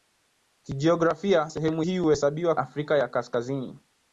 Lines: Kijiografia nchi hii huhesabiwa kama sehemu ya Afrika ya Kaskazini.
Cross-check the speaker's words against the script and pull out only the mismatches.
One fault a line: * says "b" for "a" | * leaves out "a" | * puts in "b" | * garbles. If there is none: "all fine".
* says "sehemu" for "nchi"
* leaves out "kama sehemu ya"